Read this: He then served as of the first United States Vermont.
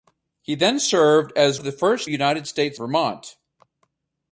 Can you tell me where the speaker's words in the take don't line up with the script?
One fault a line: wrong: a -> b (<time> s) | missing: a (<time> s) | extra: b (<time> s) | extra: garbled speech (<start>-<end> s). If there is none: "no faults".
no faults